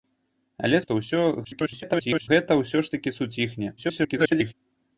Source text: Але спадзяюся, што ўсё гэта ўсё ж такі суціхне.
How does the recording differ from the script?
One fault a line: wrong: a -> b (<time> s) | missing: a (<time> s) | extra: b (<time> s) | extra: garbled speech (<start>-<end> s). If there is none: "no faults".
missing: спадзяюся (0.8 s)
extra: garbled speech (1.4-2.3 s)
extra: garbled speech (3.8-4.5 s)